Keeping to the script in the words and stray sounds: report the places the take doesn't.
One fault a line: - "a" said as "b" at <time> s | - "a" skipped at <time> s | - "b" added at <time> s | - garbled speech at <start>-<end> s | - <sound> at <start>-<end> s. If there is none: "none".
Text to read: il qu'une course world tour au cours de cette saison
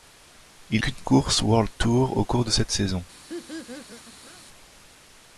- laugh at 3.3-4.4 s